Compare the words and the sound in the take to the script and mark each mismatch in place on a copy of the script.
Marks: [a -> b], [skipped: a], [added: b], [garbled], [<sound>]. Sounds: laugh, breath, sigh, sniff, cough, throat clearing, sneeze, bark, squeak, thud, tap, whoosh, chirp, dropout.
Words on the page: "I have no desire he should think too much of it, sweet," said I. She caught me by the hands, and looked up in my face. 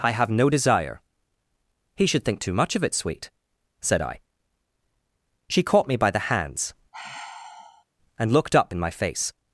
"I have no desire he should think too much of it, sweet," said I. She caught me by the hands, [sigh] and looked up in my face.